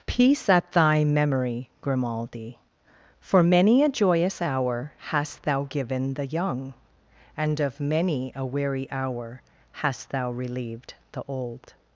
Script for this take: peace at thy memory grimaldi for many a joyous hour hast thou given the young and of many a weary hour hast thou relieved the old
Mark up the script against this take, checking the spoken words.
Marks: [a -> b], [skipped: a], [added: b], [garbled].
peace at thy memory grimaldi for many a joyous hour hast thou given the young and of many a weary hour hast thou relieved the old